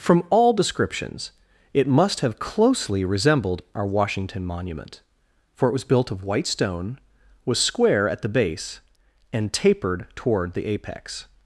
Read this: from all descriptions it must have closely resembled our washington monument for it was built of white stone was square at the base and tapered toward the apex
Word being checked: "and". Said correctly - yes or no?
yes